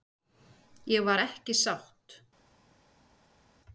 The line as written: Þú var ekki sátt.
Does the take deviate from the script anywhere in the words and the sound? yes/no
yes